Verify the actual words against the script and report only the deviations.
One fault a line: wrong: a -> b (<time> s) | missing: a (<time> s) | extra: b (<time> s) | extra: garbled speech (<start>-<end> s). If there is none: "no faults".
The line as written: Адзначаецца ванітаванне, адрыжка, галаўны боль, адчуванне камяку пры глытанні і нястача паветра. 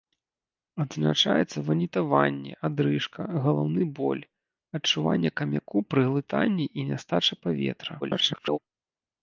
extra: garbled speech (8.0-8.6 s)